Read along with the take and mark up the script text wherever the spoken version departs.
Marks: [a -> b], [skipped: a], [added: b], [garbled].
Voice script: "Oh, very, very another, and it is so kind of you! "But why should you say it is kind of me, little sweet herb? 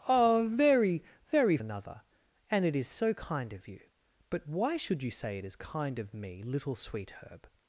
"Oh, very, very another, and it is so kind of you! "But why should you say it is kind of me, little sweet herb?